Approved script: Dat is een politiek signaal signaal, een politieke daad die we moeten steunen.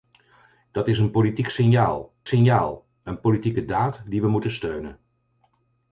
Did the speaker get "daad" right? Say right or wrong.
right